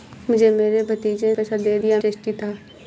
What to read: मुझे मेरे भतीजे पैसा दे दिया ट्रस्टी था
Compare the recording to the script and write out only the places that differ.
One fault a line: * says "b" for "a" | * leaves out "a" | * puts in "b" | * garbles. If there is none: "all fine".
all fine